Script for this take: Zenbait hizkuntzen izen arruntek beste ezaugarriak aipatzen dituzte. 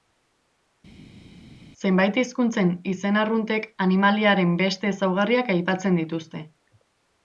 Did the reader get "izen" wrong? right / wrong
right